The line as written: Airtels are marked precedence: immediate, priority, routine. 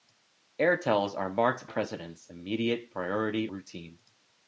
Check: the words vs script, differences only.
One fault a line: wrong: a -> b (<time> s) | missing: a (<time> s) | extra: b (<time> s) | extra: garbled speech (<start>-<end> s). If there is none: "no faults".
no faults